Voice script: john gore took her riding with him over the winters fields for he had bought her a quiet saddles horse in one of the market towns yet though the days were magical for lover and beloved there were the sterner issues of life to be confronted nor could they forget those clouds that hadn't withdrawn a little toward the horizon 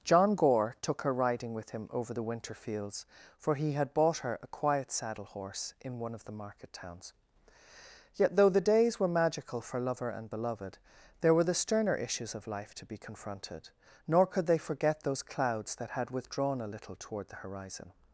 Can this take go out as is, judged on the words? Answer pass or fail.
fail